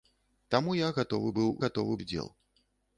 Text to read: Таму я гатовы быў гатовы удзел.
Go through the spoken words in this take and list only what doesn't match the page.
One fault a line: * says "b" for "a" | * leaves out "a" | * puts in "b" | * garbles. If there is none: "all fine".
all fine